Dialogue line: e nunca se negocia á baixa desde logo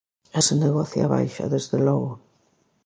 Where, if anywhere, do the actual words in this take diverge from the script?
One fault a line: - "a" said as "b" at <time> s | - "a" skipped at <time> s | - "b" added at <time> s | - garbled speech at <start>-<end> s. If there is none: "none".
- "nunca" skipped at 0.4 s